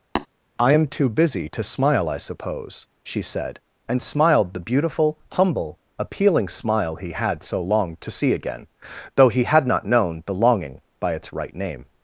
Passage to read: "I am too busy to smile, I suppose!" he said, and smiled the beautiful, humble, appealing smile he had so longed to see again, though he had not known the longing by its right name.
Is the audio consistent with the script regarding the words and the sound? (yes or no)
no